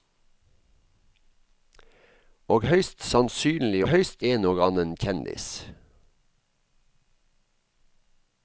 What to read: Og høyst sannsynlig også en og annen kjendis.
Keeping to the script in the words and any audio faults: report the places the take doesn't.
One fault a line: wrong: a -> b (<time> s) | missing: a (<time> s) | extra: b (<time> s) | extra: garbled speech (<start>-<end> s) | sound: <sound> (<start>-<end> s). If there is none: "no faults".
wrong: også -> høyst (3.9 s)